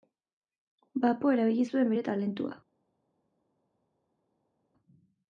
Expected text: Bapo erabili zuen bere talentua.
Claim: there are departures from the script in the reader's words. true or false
false